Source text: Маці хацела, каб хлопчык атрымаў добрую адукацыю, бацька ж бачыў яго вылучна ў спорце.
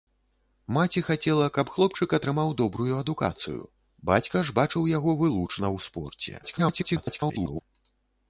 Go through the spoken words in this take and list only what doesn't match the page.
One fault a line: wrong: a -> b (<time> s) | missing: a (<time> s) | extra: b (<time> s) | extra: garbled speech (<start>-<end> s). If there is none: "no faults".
extra: garbled speech (6.4-7.6 s)